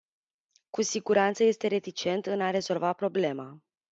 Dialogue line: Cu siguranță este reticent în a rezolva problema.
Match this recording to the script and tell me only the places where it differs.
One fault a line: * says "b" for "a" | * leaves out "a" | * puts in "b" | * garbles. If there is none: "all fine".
all fine